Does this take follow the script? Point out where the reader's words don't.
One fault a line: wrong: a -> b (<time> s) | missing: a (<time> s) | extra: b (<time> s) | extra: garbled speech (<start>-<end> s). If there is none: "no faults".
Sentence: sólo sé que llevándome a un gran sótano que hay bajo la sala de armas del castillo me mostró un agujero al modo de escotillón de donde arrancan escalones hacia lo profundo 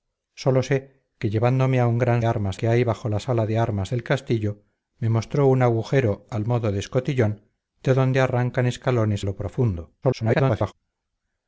wrong: sótano -> armas (2.2 s)
missing: hacia (9.3 s)
extra: garbled speech (10.0-10.7 s)